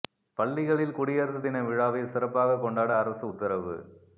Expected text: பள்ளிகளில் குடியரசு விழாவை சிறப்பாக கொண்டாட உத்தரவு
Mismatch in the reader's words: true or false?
true